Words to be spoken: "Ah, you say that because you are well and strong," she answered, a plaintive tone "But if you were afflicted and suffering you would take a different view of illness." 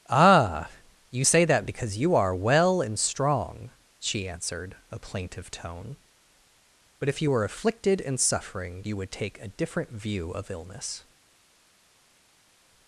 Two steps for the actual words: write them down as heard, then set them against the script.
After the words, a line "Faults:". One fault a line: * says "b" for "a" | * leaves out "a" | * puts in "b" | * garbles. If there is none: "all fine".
"Ah, you say that because you are well and strong," she answered, a plaintive tone "But if you were afflicted and suffering you would take a different view of illness."
Faults:
all fine